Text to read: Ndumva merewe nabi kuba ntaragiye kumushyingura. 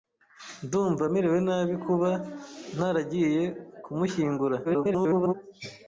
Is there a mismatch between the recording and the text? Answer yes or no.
yes